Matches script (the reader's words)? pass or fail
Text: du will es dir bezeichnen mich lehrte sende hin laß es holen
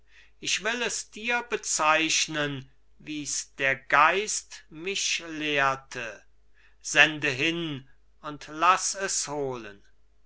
fail